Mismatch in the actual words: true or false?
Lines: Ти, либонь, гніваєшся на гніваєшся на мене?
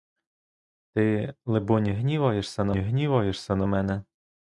false